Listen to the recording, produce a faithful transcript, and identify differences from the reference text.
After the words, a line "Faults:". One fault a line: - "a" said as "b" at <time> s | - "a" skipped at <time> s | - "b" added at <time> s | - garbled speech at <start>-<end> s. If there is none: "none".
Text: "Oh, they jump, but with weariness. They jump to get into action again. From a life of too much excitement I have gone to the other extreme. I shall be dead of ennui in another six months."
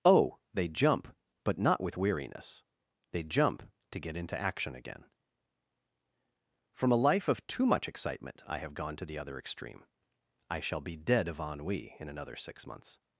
"Oh, they jump, but not with weariness. They jump to get into action again. From a life of too much excitement I have gone to the other extreme. I shall be dead of ennui in another six months."
Faults:
- "not" added at 1.6 s